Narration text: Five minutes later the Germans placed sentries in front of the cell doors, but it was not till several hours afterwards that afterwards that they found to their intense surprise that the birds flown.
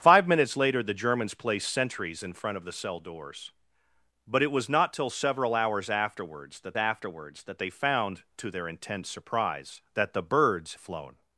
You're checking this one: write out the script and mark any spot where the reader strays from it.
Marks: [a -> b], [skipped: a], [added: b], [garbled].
Five minutes later the Germans placed sentries in front of the cell doors, but it was not till several hours afterwards that afterwards that they found to their intense surprise that the birds flown.